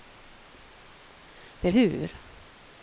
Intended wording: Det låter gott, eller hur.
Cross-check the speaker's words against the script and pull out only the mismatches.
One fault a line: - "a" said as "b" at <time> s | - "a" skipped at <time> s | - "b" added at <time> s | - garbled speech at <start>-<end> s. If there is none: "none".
- "låter gott eller" skipped at 1.7 s